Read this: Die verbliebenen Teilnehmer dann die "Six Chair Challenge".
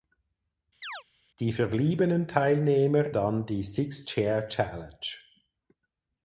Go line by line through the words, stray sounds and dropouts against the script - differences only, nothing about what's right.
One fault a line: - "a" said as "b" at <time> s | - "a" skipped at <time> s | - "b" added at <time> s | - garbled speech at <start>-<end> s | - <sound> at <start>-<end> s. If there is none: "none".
- chirp at 0.8-1.0 s